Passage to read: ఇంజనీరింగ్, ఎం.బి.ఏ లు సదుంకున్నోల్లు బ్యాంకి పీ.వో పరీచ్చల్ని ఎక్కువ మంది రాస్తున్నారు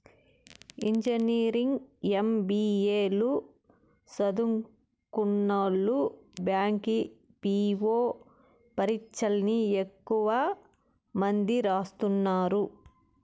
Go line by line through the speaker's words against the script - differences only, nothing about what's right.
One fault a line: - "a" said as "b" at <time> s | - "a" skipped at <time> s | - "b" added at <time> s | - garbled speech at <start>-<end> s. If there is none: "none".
none